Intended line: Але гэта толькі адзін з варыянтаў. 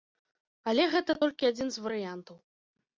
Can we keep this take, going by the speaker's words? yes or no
yes